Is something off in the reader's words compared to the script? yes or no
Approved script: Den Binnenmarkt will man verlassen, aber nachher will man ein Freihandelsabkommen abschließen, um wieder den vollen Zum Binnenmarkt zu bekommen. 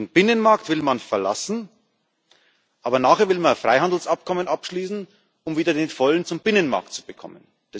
no